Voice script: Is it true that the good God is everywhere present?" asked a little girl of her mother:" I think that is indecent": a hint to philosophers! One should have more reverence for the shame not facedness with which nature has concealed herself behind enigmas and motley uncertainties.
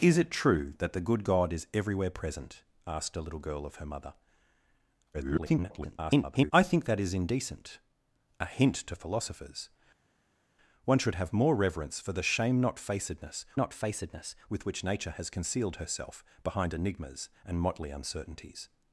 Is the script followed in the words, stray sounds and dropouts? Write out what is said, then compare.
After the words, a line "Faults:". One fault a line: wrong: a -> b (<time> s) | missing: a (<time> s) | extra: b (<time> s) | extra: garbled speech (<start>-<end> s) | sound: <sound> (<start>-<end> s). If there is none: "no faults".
Is it true that the good God is everywhere present?" asked a little girl of her mother:" [garbled] I think that is indecent": a hint to philosophers! One should have more reverence for the shame not facedness not facedness with which nature has concealed herself behind enigmas and motley uncertainties.
Faults:
extra: garbled speech (5.1-6.5 s)
extra: not facedness (13.5 s)